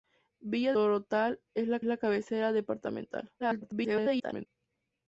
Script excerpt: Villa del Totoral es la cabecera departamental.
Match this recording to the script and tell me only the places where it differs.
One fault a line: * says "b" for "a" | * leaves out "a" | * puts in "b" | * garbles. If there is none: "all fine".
* leaves out "del"
* puts in "la"
* garbles